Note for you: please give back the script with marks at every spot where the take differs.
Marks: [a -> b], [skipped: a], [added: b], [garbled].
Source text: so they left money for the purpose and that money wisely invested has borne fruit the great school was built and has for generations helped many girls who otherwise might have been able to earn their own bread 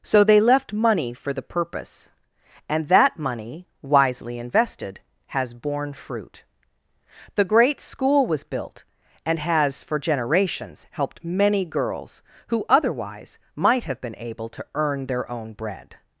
so they left money for the purpose and that money wisely invested has borne fruit the great school was built and has for generations helped many girls who otherwise might have been able to earn their own bread